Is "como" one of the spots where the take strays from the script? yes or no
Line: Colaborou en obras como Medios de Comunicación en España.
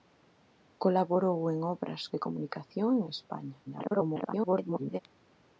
yes